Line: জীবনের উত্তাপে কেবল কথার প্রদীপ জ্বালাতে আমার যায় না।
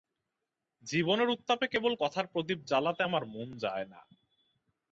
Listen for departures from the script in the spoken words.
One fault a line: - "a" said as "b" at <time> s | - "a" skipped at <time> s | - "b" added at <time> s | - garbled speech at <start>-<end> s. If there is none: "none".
- "মন" added at 3.3 s